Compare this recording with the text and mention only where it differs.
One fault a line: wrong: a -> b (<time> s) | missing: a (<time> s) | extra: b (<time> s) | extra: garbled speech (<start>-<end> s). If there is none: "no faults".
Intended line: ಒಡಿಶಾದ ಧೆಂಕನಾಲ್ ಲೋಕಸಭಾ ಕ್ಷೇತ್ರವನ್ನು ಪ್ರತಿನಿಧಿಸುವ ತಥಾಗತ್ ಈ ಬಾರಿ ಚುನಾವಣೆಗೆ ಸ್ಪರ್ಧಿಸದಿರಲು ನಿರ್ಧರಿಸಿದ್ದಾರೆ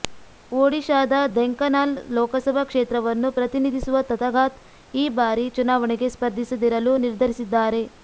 no faults